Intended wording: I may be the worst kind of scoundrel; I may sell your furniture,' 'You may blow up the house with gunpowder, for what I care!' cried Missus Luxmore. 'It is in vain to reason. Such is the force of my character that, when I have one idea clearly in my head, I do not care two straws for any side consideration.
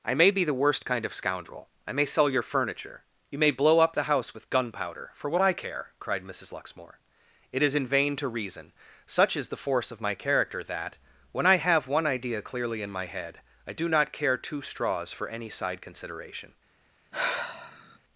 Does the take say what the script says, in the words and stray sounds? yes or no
no